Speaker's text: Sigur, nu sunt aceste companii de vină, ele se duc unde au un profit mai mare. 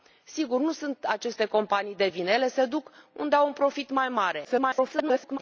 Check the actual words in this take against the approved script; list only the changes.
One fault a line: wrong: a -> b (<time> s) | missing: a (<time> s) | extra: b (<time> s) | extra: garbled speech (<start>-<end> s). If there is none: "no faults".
extra: garbled speech (4.4-5.4 s)